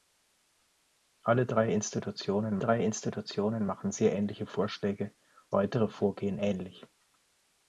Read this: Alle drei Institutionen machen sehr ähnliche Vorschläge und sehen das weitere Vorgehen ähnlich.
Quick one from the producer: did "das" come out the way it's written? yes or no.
no